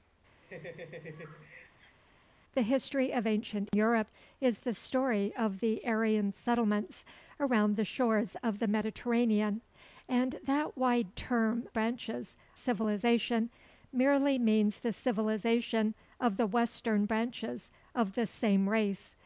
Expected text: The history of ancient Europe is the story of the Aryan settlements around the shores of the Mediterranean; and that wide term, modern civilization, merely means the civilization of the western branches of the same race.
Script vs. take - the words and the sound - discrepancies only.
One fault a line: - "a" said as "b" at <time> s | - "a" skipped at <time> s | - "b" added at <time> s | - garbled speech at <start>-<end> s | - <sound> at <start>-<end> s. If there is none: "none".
- laugh at 0.4-2.0 s
- "modern" said as "branches" at 11.7 s